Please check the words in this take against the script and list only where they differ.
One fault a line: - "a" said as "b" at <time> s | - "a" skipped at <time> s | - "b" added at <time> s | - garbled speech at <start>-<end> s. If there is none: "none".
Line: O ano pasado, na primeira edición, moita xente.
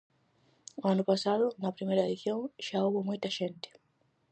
- "xa houbo" added at 2.7 s